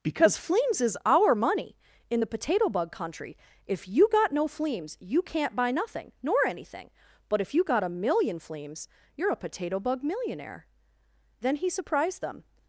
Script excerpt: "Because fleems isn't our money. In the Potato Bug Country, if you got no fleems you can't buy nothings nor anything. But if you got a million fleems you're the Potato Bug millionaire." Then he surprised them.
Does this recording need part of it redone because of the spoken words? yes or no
yes